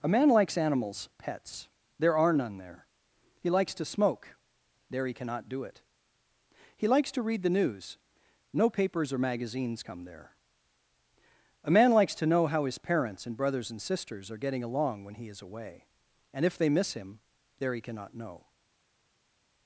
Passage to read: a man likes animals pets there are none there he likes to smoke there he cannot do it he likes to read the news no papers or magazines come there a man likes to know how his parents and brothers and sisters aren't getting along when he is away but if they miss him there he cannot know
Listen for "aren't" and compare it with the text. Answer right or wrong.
wrong